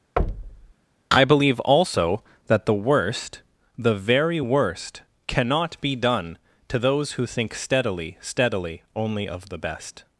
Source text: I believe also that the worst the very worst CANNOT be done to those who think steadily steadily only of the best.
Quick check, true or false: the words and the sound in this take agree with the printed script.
false